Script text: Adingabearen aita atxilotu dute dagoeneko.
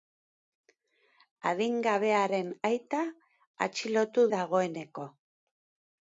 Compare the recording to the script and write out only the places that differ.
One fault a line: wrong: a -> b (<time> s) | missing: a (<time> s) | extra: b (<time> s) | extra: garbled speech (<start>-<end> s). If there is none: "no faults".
missing: dute (4.3 s)